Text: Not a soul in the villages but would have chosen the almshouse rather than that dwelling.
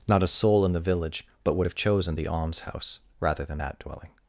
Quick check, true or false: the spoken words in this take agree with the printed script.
false